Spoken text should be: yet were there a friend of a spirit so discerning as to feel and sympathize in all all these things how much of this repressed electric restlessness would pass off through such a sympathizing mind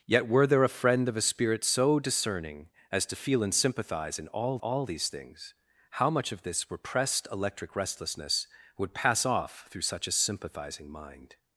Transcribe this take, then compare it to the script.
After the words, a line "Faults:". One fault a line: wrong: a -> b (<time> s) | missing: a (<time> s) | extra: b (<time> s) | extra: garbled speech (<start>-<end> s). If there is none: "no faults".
yet were there a friend of a spirit so discerning as to feel and sympathize in all all these things how much of this repressed electric restlessness would pass off through such a sympathizing mind
Faults:
no faults